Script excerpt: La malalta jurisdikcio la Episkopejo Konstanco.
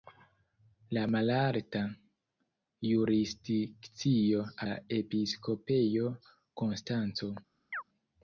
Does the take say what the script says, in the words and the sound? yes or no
no